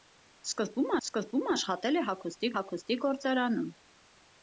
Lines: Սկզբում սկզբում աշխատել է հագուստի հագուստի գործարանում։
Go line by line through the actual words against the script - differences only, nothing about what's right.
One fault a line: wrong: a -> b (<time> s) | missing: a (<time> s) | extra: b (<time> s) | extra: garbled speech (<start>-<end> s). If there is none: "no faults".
no faults